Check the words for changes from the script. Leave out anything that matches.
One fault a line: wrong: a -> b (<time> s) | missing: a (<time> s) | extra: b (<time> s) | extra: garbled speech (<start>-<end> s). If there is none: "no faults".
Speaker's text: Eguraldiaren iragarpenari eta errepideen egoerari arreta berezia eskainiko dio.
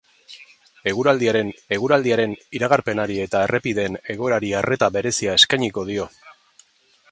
extra: eguraldiaren (1.8 s)